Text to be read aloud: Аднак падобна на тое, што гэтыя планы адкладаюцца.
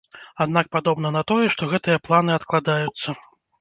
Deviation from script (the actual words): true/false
false